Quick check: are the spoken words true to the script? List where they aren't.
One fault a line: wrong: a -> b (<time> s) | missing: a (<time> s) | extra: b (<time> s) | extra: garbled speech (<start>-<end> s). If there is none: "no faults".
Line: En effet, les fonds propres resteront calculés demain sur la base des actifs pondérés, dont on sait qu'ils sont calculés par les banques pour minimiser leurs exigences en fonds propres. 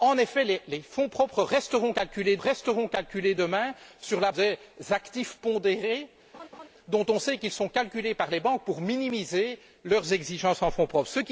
extra: resteront calculés (2.4 s)
missing: base (4.3 s)